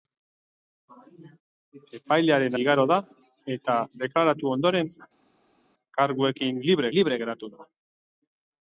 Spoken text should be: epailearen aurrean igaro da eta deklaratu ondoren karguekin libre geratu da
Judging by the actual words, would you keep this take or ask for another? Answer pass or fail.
fail